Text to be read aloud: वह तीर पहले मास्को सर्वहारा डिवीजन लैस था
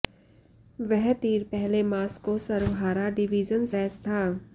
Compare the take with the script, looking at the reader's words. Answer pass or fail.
pass